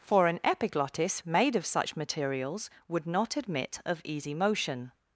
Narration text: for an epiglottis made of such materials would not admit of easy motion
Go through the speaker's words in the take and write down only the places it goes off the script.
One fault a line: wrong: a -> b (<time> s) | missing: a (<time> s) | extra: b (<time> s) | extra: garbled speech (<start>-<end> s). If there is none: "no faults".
no faults